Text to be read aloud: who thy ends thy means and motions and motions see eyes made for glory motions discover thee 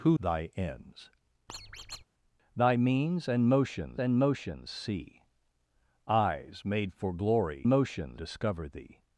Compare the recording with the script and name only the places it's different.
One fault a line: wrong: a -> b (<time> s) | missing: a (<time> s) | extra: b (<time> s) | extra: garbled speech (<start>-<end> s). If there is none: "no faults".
no faults